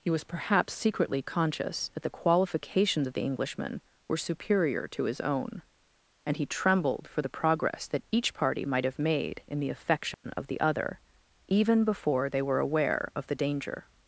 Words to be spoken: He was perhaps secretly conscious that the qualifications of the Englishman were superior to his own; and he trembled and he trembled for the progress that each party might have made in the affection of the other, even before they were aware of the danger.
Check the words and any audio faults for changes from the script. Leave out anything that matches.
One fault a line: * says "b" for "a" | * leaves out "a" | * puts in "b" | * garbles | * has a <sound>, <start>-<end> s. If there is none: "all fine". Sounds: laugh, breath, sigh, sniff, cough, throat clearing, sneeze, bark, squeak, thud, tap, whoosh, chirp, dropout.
* leaves out "and he trembled"
* has a dropout, 10.1-10.2 s